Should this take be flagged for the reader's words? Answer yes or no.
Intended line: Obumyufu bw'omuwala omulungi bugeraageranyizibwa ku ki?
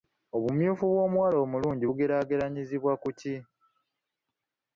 no